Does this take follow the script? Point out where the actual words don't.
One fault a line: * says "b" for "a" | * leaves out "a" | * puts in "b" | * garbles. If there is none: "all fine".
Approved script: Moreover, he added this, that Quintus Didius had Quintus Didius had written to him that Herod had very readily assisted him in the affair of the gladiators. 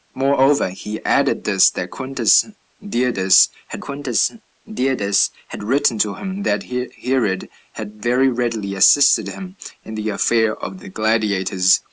all fine